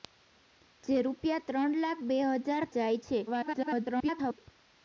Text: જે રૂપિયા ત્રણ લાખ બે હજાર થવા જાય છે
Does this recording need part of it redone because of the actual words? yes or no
yes